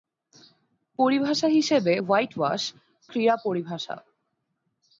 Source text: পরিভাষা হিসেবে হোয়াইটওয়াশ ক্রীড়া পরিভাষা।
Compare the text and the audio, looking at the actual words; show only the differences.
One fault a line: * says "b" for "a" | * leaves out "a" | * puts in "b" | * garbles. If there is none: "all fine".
all fine